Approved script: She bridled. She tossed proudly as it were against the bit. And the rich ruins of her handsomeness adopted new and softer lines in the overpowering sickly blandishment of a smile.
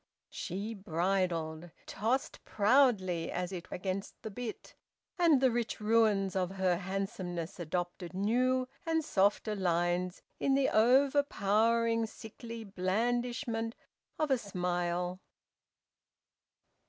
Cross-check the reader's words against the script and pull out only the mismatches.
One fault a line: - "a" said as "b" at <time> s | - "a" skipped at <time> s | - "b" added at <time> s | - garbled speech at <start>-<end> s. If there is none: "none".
- "She" skipped at 1.7 s
- "were" skipped at 3.7 s